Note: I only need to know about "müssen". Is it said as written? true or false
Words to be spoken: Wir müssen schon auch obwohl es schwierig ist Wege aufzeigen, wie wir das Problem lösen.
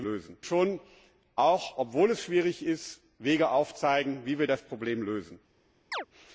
false